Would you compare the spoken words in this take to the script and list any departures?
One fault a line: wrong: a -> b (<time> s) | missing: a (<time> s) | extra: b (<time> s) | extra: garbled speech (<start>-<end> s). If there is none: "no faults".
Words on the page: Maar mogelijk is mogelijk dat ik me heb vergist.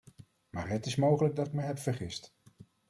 wrong: mogelijk -> het (0.7 s)